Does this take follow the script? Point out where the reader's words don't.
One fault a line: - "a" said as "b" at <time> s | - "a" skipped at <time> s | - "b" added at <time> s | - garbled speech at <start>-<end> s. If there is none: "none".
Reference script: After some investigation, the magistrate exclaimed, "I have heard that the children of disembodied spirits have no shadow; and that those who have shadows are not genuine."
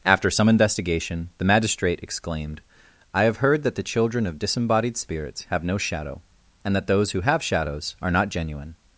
none